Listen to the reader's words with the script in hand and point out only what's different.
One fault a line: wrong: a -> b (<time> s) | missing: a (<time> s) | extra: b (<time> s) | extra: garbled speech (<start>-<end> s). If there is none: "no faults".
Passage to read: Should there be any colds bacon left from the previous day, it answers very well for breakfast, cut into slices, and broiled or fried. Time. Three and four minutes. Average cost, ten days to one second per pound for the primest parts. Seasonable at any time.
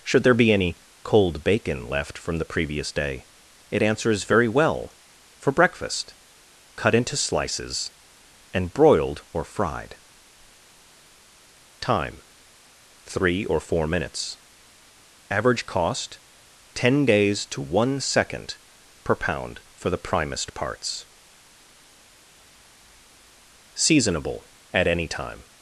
wrong: colds -> cold (1.0 s)
wrong: and -> or (13.5 s)